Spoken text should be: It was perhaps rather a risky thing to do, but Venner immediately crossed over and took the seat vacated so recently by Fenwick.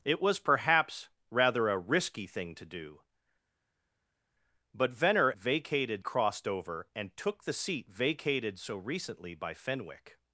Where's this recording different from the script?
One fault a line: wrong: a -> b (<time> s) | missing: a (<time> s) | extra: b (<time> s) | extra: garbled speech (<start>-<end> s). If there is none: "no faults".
wrong: immediately -> vacated (5.4 s)